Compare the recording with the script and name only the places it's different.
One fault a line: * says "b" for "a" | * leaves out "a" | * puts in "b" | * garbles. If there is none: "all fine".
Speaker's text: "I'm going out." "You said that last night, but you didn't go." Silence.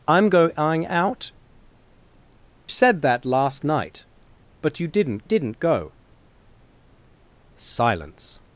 * leaves out "You"
* puts in "didn't"